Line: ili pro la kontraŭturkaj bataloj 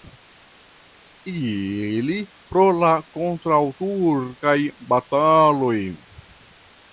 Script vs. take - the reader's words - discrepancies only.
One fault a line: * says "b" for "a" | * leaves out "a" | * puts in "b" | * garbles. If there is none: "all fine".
all fine